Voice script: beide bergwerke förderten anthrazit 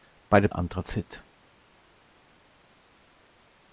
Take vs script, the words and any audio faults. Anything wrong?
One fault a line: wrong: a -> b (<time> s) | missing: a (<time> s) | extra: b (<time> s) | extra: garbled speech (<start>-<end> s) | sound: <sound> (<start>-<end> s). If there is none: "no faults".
missing: bergwerke förderten (0.5 s)